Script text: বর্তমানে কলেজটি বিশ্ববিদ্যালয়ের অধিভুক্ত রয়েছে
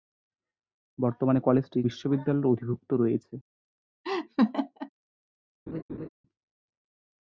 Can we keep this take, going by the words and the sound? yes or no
no